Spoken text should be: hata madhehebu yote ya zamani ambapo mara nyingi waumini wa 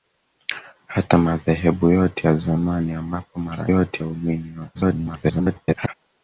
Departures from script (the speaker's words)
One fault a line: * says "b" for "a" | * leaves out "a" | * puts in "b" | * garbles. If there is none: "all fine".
* says "yote" for "nyingi"
* garbles